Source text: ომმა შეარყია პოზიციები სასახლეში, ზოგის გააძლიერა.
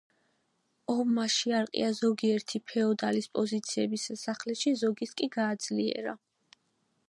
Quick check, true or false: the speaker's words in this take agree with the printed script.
false